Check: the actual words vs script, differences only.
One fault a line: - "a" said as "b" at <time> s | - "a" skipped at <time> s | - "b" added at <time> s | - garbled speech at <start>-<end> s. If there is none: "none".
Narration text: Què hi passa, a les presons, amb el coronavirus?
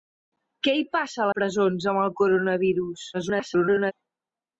- "les" skipped at 1.3 s
- garbled speech at 3.1-3.9 s